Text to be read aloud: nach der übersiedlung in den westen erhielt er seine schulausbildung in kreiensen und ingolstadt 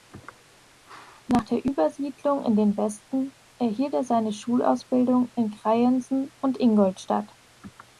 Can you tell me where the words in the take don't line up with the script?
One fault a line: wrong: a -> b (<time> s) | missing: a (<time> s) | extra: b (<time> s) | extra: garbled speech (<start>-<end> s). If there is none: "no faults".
no faults